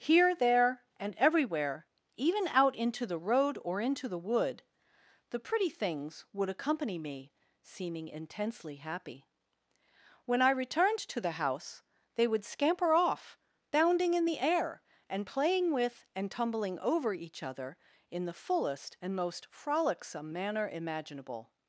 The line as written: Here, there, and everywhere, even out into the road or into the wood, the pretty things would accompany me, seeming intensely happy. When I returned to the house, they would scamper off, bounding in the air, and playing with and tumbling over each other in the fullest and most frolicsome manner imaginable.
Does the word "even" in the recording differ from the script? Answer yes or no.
no